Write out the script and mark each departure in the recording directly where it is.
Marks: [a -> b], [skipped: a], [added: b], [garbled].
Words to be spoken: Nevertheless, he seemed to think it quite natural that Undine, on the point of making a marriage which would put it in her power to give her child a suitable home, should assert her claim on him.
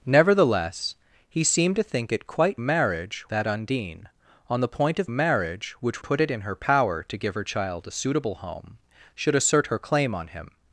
Nevertheless, he seemed to think it quite [natural -> marriage] that Undine, on the point of [skipped: making] a marriage which [skipped: would] put it in her power to give her child a suitable home, should assert her claim on him.